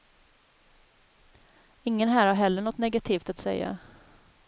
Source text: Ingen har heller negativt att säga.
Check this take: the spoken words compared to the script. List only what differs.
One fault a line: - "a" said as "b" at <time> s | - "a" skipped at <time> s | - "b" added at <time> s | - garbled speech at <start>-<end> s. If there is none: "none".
- "här" added at 2.1 s
- "något" added at 2.6 s